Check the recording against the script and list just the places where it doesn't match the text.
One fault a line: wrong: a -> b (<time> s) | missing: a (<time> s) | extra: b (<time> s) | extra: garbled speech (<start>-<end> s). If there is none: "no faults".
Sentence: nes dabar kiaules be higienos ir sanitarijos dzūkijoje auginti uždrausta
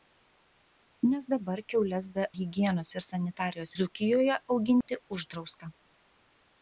no faults